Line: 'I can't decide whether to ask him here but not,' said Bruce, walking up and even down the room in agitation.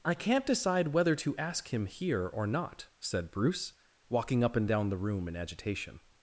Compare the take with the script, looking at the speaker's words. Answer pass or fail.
fail